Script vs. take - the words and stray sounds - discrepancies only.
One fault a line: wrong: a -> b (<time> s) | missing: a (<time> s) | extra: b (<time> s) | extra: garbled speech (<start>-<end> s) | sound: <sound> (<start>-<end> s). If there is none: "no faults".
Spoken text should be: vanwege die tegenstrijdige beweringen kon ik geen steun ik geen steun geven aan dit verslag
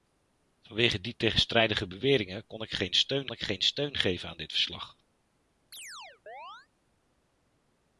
sound: chirp (5.7-6.7 s)